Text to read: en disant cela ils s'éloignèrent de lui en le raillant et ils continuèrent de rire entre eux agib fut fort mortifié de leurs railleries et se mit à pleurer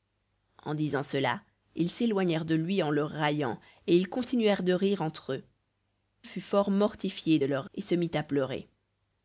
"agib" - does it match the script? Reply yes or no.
no